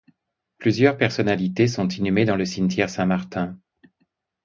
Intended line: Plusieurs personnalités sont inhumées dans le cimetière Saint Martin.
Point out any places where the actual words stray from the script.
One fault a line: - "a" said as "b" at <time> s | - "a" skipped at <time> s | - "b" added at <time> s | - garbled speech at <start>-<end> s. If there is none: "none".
none